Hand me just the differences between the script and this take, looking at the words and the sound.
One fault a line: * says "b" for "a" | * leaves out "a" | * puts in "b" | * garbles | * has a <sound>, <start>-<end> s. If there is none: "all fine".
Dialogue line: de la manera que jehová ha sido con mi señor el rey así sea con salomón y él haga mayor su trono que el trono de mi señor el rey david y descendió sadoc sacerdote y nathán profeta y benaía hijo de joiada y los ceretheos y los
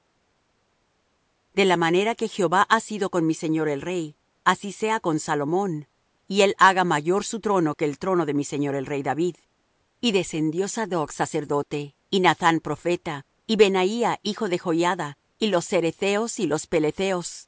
all fine